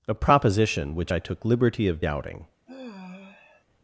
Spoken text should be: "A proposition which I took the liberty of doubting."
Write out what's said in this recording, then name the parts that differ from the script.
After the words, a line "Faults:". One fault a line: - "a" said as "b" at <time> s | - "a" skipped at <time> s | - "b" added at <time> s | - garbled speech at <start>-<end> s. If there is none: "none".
"A proposition which I took liberty of doubting."
Faults:
- "the" skipped at 1.4 s